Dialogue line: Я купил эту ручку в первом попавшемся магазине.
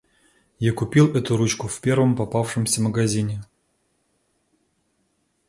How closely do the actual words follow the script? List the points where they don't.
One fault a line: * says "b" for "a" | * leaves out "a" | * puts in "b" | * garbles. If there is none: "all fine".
all fine